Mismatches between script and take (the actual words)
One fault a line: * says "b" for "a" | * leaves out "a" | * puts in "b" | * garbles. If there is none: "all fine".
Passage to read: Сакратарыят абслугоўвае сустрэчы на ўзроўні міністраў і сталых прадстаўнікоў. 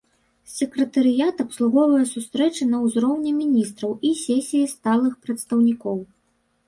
* puts in "сесіі"